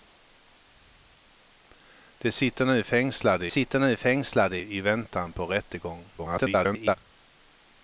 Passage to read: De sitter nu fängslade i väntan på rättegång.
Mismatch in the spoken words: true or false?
true